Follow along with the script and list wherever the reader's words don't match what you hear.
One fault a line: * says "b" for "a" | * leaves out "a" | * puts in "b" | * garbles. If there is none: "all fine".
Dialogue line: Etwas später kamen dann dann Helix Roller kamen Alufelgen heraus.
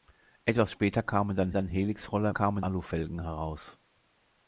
all fine